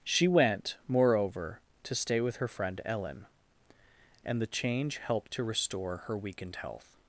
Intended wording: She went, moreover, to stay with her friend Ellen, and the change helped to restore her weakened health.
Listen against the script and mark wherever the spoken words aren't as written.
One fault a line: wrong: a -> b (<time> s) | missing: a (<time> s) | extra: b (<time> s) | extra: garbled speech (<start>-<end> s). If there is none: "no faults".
no faults